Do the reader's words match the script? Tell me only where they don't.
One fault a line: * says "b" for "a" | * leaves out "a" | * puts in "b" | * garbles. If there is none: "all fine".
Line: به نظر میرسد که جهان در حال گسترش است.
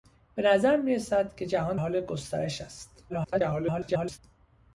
* leaves out "در"
* garbles